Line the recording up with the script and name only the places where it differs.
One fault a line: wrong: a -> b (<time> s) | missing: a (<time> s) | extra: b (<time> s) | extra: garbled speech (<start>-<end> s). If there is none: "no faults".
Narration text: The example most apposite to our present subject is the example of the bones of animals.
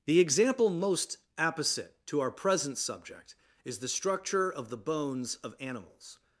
wrong: example -> structure (3.9 s)